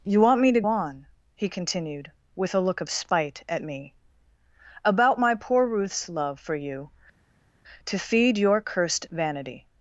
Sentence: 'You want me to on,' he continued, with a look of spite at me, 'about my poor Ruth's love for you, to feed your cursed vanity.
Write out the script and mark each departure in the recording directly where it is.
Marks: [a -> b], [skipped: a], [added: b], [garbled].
'You want me to on,' he continued, with a look of spite at me, 'about my poor Ruth's love for you, to feed your cursed vanity.